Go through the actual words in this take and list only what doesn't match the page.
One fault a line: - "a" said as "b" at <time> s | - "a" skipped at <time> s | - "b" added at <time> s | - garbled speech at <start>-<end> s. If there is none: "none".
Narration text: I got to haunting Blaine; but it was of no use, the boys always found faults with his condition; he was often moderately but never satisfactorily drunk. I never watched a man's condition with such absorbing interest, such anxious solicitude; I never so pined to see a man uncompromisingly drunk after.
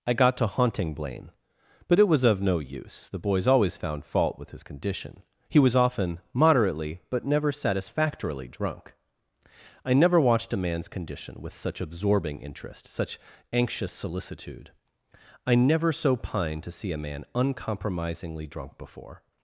- "faults" said as "fault" at 4.0 s
- "after" said as "before" at 18.8 s